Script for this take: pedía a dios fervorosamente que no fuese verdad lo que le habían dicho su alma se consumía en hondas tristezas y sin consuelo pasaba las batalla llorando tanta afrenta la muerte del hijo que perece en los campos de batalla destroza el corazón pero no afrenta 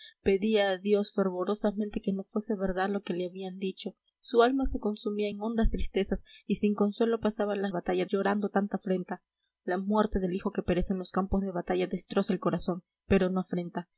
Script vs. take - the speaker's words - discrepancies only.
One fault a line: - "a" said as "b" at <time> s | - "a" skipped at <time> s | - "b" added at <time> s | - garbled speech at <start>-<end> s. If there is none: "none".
none